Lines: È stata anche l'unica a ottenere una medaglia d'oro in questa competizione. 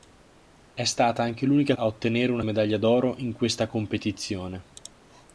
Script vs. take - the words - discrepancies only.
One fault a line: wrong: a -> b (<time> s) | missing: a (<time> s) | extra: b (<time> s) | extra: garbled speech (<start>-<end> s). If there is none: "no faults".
no faults